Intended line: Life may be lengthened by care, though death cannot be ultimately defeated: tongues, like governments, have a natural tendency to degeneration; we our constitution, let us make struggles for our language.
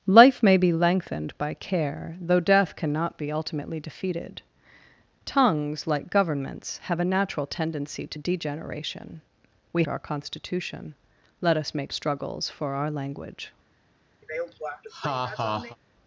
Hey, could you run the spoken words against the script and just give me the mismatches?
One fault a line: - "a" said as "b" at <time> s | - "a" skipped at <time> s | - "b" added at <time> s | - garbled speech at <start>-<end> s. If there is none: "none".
none